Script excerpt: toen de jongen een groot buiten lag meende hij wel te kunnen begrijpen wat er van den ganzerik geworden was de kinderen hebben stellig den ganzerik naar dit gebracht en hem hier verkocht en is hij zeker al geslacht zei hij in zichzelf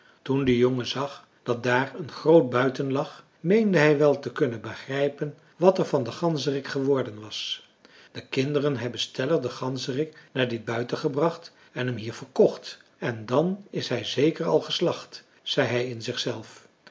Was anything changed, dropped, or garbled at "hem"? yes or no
no